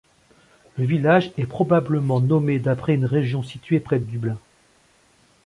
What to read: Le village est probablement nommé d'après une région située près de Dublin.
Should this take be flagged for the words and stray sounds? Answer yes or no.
no